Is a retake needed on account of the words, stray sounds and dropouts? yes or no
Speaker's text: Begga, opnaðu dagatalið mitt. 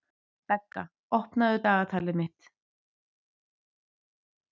no